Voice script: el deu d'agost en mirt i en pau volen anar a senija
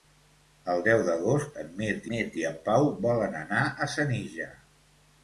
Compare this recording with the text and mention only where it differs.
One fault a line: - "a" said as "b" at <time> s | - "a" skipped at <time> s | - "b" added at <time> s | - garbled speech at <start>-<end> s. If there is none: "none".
- "mirt" added at 2.1 s